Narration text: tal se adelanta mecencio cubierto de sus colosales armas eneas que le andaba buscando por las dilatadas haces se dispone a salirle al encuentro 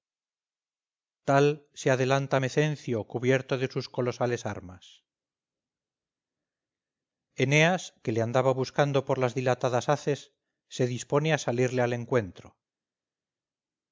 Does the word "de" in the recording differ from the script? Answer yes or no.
no